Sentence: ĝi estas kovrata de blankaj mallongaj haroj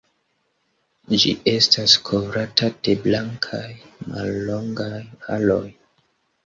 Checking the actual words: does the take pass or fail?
pass